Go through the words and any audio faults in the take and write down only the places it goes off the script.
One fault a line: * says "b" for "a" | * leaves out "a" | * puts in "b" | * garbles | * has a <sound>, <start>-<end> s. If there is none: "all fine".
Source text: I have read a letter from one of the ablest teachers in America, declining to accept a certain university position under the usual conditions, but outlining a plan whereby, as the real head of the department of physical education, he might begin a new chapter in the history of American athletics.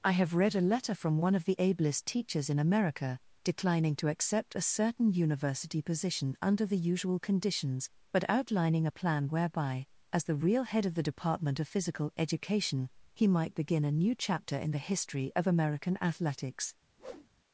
* has a whoosh, 17.0-17.3 s